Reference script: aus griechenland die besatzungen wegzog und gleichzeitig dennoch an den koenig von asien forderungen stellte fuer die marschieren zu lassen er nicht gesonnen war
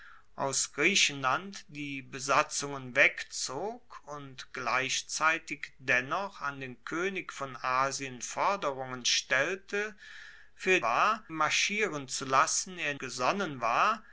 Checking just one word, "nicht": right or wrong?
wrong